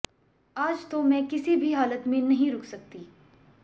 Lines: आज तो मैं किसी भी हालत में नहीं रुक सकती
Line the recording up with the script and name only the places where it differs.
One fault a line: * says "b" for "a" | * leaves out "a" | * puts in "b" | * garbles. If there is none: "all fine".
all fine